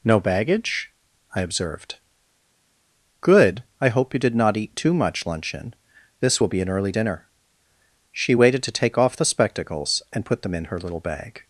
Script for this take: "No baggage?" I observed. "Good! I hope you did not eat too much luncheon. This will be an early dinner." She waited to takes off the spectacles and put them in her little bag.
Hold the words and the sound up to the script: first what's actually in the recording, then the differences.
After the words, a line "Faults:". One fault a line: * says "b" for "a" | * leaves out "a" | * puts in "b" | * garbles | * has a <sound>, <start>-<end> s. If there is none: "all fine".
"No baggage?" I observed. "Good! I hope you did not eat too much luncheon. This will be an early dinner." She waited to take off the spectacles and put them in her little bag.
Faults:
* says "take" for "takes"